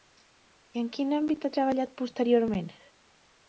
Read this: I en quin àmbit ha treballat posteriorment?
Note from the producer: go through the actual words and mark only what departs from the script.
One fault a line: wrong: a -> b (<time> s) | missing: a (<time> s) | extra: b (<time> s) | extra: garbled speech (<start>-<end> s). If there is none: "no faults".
no faults